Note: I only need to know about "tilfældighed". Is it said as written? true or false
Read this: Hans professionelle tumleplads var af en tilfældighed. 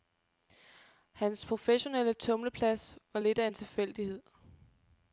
true